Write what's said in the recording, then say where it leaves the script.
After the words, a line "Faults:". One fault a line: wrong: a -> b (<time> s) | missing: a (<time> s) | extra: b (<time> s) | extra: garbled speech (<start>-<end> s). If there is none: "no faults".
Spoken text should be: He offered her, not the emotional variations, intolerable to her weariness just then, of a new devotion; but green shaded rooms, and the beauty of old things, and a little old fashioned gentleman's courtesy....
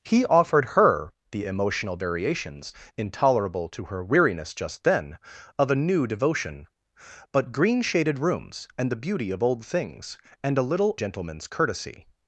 He offered her, the emotional variations, intolerable to her weariness just then, of a new devotion; but green shaded rooms, and the beauty of old things, and a little gentleman's courtesy....
Faults:
missing: not (1.1 s)
missing: old fashioned (10.9 s)